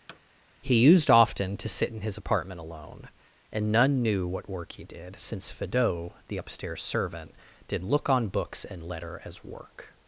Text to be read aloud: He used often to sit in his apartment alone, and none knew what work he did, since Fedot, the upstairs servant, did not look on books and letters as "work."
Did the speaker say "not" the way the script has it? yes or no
no